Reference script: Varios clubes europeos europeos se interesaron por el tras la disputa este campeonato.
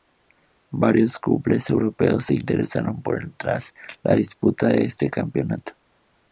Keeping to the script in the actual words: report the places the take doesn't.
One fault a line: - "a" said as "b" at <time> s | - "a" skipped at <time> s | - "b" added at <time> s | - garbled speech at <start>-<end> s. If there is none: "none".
- "europeos" skipped at 2.3 s
- "de" added at 4.7 s